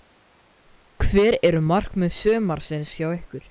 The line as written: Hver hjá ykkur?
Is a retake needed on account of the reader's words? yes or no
yes